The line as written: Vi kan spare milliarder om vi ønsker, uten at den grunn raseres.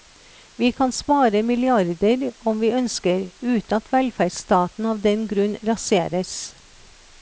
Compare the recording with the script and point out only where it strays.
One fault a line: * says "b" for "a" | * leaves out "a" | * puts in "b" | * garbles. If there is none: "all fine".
* puts in "velferdsstaten av"